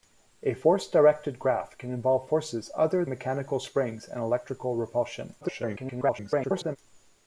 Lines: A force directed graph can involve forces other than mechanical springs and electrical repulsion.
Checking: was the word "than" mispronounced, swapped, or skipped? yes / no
yes